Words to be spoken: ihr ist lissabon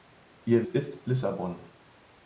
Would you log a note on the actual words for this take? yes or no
no